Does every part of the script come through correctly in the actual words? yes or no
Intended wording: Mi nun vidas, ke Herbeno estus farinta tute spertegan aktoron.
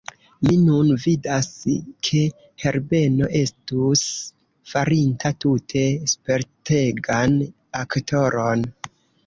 yes